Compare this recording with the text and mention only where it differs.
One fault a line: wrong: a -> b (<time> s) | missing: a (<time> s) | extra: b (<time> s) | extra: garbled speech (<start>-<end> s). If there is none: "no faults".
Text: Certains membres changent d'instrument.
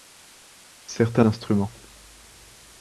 missing: membres changent (1.2 s)